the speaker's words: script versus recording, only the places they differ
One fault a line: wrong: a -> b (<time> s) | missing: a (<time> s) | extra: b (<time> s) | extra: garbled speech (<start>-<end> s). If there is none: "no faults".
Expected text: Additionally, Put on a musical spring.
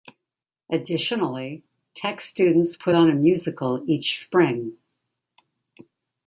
extra: Tech students (1.9 s)
extra: each (3.9 s)